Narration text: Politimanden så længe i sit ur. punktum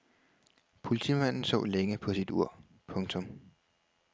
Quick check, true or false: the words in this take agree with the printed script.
false